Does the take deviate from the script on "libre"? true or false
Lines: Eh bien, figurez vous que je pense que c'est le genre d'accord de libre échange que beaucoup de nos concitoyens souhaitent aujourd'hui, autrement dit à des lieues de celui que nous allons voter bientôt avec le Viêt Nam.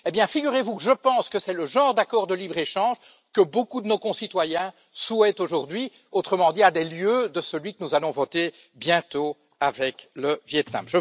false